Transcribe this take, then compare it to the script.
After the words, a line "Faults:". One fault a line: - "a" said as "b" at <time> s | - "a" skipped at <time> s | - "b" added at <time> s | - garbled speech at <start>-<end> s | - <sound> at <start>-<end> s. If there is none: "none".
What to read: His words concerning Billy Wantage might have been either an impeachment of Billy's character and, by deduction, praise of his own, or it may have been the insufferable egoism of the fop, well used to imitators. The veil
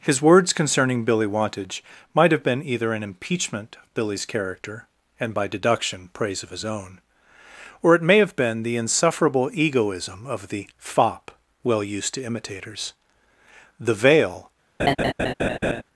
His words concerning Billy Wantage might have been either an impeachment of Billy's character and, by deduction, praise of his own, or it may have been the insufferable egoism of the fop, well used to imitators. The veil
Faults:
- laugh at 14.8-15.8 s